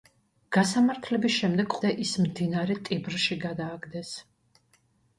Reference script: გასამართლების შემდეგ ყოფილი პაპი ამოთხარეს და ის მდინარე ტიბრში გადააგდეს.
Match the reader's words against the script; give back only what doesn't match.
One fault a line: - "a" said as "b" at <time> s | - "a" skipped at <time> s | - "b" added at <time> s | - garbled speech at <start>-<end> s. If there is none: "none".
- "ყოფილი პაპი ამოთხარეს" skipped at 1.8 s